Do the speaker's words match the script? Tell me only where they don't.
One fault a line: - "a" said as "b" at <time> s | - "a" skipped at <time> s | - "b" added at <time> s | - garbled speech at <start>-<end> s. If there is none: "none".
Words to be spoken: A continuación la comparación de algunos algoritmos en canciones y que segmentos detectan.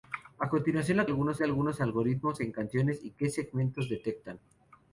- "comparación" said as "algunos" at 1.1 s